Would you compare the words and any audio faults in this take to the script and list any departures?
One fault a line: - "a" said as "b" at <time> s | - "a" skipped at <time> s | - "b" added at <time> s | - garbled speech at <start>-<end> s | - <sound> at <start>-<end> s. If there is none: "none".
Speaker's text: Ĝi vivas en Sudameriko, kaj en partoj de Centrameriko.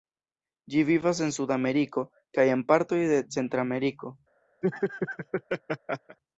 - laugh at 4.6-6.2 s